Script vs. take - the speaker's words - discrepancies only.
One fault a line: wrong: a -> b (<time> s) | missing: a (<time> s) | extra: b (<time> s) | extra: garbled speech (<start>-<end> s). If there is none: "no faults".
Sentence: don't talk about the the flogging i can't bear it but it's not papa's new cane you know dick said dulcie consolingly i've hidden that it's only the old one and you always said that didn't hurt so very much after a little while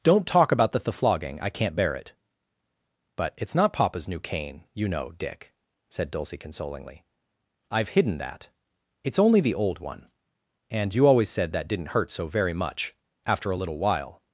no faults